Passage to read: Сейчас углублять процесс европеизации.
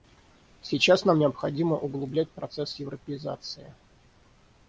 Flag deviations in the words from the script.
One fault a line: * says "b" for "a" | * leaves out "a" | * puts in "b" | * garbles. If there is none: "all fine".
* puts in "нам необходимо"